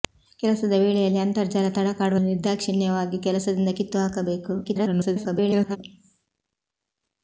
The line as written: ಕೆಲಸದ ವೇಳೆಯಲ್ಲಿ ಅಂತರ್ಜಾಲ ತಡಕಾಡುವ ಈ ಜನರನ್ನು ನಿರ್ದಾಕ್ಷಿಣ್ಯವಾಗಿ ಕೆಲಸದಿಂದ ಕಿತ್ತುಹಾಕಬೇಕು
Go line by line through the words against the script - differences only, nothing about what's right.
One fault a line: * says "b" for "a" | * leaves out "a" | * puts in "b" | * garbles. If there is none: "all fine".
* leaves out "ಈ ಜನರನ್ನು"
* garbles